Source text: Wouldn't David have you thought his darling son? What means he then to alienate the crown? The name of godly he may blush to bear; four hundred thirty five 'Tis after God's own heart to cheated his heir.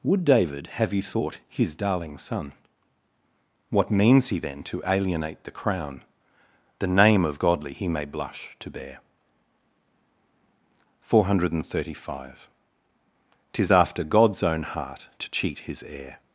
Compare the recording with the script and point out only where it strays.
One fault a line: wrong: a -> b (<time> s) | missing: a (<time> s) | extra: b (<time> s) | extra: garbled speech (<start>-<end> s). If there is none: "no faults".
wrong: Wouldn't -> Would (0.0 s)
wrong: cheated -> cheat (15.3 s)